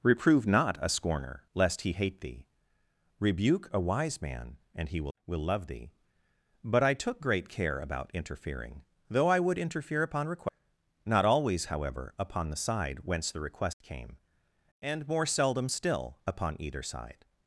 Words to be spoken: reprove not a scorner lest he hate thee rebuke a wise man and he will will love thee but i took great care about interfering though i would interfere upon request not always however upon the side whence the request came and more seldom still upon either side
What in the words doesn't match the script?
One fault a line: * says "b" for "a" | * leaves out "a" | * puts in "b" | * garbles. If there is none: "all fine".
all fine